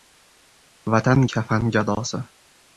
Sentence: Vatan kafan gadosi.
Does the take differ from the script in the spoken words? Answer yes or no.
no